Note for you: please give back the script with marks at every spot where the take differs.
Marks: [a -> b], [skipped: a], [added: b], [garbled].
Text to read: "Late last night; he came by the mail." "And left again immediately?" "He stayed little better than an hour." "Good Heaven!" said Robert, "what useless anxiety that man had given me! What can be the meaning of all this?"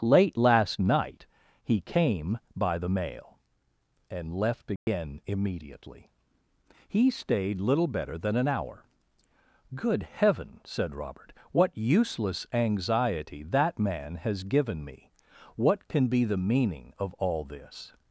"Late last night; he came by the mail." "And left again immediately?" "He stayed little better than an hour." "Good Heaven!" said Robert, "what useless anxiety that man [had -> has] given me! What can be the meaning of all this?"